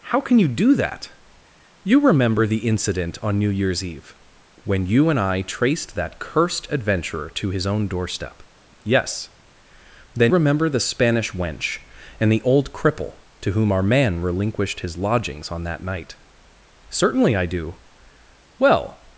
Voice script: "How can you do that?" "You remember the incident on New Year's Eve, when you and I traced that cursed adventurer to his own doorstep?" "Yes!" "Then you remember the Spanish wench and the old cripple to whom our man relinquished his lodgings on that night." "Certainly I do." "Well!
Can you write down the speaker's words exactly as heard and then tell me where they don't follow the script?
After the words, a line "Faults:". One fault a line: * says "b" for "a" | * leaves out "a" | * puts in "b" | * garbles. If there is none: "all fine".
"How can you do that?" "You remember the incident on New Year's Eve, when you and I traced that cursed adventurer to his own doorstep?" "Yes!" "Then remember the Spanish wench and the old cripple to whom our man relinquished his lodgings on that night." "Certainly I do." "Well!
Faults:
* leaves out "you"